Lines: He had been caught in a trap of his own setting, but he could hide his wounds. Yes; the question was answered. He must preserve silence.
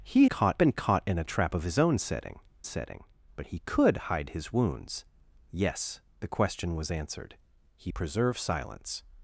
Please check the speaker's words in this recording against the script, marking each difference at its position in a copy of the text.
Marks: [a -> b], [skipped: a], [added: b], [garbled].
He [had -> caught] been caught in a trap of his own setting, [added: setting] but he could hide his wounds. Yes; the question was answered. He [skipped: must] preserve silence.